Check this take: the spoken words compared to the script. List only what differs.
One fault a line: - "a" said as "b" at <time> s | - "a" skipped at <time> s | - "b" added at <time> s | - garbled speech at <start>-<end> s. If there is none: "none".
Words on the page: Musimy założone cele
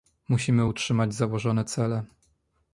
- "utrzymać" added at 0.6 s